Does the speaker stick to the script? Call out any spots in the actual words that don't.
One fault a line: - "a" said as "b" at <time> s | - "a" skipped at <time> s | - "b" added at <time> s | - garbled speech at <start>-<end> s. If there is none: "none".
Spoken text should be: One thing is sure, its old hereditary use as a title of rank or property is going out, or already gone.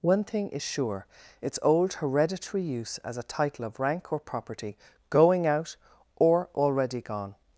- "is" skipped at 4.8 s